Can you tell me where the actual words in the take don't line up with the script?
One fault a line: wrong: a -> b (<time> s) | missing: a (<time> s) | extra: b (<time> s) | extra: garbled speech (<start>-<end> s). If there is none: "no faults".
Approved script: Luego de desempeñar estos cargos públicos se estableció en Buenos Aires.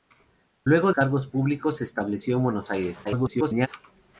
missing: de desempeñar estos (0.9 s)
extra: garbled speech (3.0-3.7 s)